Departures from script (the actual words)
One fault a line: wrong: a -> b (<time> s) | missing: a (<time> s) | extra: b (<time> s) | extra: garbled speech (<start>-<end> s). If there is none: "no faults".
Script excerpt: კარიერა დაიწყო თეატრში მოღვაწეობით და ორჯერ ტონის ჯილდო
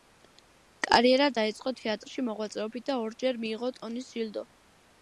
extra: მიიღო (3.5 s)